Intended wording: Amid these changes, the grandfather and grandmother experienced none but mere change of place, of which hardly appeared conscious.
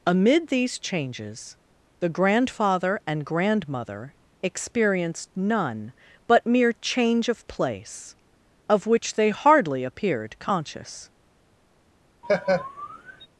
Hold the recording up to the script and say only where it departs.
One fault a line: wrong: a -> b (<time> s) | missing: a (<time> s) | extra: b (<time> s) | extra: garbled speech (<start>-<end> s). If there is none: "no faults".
extra: they (9.1 s)